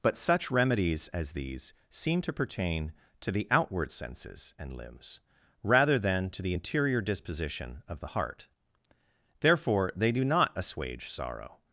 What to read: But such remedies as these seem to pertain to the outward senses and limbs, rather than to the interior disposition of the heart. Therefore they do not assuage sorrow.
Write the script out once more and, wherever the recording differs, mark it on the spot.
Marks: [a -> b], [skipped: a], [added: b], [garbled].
But such remedies as these seem to pertain to the outward senses and limbs, rather than to the interior disposition of the heart. Therefore they do not assuage sorrow.